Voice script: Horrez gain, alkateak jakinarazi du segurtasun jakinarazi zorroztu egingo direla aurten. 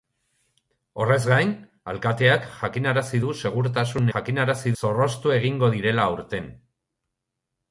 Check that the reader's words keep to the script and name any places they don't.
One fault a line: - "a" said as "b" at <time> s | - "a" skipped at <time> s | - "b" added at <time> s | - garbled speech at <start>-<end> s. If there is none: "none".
none